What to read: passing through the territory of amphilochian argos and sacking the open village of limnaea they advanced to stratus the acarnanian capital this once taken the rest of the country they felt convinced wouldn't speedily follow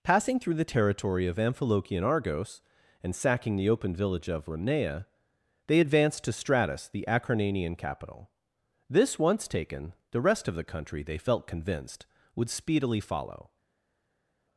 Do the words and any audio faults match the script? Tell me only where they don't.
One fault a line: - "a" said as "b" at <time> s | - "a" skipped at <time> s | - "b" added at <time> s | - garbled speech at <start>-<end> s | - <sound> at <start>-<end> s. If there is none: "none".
- "wouldn't" said as "would" at 12.4 s